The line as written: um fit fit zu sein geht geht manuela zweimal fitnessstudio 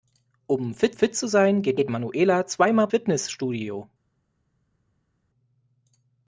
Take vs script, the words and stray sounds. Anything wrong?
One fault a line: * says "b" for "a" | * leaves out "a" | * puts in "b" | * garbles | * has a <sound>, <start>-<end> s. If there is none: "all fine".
all fine